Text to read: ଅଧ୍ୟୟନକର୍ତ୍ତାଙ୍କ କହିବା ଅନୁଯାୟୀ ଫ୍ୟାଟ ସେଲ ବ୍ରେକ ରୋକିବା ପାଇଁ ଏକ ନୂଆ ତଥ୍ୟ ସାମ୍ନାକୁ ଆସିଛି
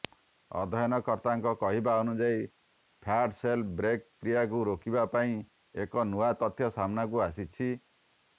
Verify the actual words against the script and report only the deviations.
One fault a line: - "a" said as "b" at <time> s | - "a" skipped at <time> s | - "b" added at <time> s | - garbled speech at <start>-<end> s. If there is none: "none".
- "କ୍ରିୟାକୁ" added at 4.2 s